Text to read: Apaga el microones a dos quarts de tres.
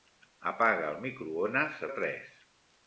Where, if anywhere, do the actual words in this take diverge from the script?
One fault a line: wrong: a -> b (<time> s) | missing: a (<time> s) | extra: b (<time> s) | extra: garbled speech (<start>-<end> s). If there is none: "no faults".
missing: dos quarts (1.9 s)